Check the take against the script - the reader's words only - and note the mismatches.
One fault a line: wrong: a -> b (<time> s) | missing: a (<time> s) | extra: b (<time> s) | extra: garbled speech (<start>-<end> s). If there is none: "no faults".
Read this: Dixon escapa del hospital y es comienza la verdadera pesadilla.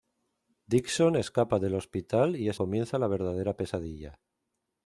no faults